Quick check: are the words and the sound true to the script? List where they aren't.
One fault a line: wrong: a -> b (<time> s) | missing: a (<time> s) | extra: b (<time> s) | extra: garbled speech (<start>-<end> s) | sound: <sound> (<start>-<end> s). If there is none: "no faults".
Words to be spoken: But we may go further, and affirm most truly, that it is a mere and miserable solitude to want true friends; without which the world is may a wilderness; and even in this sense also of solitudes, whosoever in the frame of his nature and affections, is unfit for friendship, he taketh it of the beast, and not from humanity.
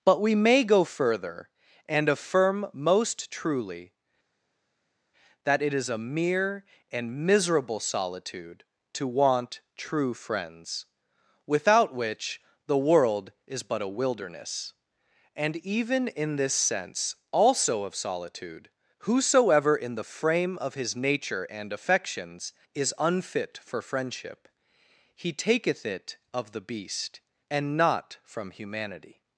wrong: may -> but (13.6 s)
wrong: solitudes -> solitude (18.0 s)